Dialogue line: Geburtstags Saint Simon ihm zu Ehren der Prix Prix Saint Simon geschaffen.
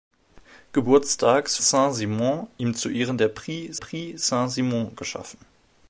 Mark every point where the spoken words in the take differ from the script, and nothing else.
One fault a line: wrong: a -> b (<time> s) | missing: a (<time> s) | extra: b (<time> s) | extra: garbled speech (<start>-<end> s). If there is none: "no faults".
no faults